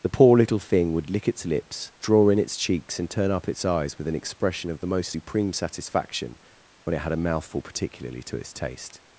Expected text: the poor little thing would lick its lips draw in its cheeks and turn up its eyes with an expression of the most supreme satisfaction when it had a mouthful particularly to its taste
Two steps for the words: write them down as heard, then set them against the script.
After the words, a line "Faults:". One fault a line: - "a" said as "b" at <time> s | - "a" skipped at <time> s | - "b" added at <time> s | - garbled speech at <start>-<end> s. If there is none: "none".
the poor little thing would lick its lips draw in its cheeks and turn up its eyes with an expression of the most supreme satisfaction when it had a mouthful particularly to its taste
Faults:
none